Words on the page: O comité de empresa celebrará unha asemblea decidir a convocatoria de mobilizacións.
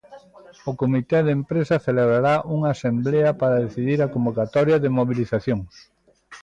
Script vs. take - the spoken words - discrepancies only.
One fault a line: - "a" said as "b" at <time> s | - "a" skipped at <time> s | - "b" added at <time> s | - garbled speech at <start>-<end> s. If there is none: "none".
- "para" added at 3.4 s